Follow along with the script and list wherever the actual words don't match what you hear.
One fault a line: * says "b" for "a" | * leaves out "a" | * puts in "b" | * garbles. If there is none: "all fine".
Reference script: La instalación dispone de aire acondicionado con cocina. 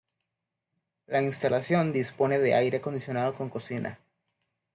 all fine